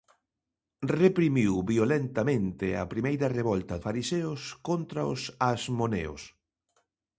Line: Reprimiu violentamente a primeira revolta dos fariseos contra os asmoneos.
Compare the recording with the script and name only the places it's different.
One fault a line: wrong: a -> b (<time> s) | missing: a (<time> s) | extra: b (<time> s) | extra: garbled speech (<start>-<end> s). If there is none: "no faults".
missing: dos (3.8 s)